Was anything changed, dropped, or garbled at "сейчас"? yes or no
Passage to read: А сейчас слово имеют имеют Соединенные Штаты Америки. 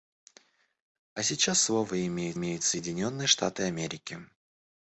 no